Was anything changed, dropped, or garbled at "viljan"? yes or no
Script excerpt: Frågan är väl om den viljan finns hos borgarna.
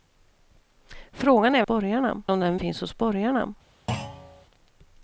yes